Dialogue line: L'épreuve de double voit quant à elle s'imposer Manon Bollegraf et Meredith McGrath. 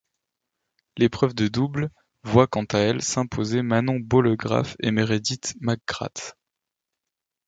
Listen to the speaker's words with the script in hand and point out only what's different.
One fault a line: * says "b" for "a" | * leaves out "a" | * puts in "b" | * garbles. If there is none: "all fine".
all fine